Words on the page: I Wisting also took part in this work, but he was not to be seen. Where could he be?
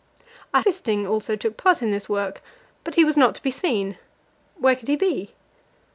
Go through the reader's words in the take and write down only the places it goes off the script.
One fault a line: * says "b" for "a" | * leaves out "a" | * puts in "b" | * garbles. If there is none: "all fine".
all fine